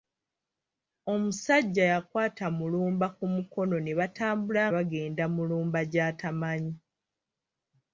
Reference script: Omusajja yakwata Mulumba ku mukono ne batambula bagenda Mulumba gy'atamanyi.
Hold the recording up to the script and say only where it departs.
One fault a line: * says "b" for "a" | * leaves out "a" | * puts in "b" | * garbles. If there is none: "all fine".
all fine